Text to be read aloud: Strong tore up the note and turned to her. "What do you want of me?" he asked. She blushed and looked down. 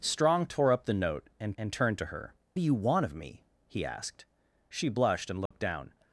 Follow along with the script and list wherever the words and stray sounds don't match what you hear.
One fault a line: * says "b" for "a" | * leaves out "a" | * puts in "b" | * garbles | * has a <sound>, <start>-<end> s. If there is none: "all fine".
* puts in "and"
* leaves out "What"
* has a dropout, 5.5-5.5 s